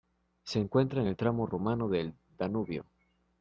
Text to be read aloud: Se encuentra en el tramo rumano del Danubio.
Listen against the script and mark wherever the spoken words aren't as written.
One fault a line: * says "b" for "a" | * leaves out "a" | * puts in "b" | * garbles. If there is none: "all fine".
all fine